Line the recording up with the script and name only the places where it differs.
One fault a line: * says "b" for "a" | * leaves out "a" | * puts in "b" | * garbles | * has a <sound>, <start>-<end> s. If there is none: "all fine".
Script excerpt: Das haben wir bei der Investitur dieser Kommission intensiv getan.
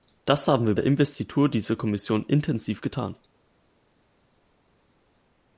* leaves out "bei"